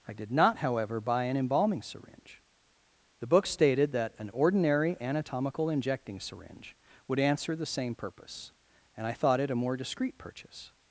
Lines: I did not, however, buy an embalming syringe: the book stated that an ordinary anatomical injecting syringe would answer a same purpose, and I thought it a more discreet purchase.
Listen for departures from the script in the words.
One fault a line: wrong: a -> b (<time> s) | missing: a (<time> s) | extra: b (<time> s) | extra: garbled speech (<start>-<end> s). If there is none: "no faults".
wrong: a -> the (7.5 s)